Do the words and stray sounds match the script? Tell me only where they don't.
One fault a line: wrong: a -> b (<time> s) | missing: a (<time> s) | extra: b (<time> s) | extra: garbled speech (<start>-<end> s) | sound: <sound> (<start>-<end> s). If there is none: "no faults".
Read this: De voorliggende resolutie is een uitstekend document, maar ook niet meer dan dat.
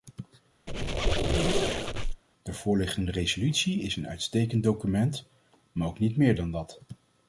sound: squeak (0.7-2.2 s)